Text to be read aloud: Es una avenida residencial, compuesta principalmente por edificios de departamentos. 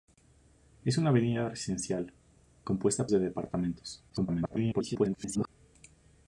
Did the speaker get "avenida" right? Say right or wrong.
right